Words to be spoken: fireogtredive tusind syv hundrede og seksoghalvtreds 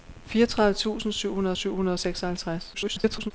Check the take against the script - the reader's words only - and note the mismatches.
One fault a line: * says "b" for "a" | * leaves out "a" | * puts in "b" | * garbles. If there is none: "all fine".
* puts in "syv hundrede"
* garbles